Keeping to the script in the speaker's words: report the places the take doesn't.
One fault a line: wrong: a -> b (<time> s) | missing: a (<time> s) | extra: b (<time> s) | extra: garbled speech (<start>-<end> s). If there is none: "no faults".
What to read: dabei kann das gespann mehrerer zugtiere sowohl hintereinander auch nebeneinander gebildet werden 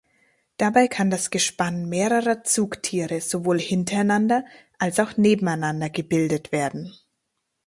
extra: als (4.8 s)